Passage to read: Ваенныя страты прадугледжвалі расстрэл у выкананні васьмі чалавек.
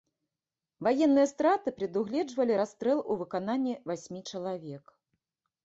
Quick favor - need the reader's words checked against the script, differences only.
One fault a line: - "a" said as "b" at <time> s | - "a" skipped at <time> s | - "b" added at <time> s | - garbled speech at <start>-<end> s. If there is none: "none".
none